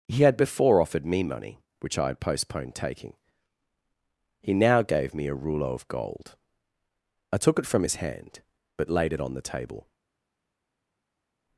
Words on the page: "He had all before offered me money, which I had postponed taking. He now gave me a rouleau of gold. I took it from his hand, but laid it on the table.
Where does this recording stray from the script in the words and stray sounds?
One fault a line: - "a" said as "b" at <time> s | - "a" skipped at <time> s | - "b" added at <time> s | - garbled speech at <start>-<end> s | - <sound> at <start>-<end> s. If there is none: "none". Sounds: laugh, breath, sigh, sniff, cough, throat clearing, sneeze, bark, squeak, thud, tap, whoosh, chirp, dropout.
- "all" skipped at 0.4 s